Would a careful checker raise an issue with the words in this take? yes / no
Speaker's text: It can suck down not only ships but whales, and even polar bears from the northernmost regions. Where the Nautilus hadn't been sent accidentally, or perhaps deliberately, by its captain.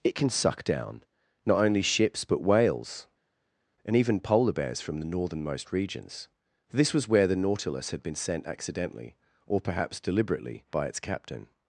yes